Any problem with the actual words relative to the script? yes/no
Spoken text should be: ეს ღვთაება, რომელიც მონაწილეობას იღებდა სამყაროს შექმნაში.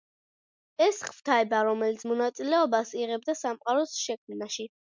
no